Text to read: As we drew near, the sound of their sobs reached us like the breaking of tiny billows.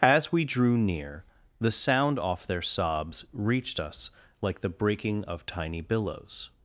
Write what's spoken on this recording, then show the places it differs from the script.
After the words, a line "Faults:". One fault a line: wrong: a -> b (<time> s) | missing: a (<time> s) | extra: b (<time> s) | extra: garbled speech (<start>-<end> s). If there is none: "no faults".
As we drew near, the sound off their sobs reached us like the breaking of tiny billows.
Faults:
wrong: of -> off (2.2 s)